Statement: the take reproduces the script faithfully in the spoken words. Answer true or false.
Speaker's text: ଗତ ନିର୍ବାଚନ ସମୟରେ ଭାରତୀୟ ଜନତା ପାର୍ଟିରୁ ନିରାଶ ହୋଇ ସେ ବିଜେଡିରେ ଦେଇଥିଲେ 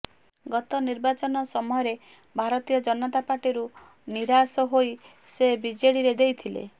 true